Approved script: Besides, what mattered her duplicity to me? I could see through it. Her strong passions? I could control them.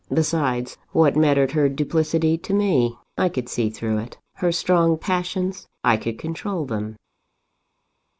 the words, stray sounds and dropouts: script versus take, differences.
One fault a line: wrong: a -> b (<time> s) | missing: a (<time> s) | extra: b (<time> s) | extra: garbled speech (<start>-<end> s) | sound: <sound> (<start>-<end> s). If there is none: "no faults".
no faults